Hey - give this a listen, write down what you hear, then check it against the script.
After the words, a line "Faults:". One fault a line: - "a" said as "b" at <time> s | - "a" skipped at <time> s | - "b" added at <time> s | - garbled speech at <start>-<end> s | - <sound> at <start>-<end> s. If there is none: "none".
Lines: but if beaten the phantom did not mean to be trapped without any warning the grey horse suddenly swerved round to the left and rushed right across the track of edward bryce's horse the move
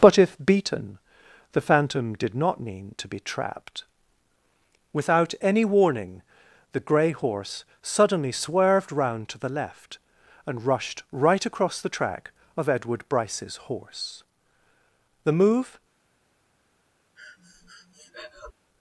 but if beaten the phantom did not mean to be trapped without any warning the grey horse suddenly swerved round to the left and rushed right across the track of edward bryce's horse the move
Faults:
- breath at 17.2-18.5 s